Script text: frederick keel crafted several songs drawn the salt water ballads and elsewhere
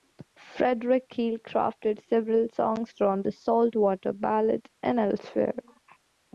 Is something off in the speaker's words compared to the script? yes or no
no